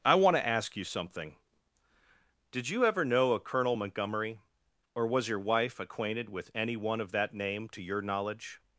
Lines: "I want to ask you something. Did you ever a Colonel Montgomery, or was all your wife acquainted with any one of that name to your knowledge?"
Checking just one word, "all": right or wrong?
wrong